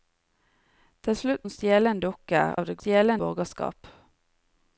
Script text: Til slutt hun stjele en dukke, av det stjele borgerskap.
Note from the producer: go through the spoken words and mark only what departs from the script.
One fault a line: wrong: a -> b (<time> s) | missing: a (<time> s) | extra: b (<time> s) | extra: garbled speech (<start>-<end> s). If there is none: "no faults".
no faults